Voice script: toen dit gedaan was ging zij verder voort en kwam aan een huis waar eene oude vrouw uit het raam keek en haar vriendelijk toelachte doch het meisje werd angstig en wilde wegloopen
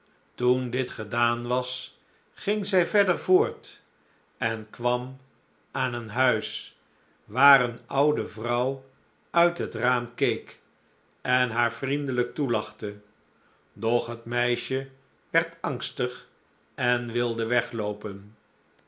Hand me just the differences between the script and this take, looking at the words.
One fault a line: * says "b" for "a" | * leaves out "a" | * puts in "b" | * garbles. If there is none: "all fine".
all fine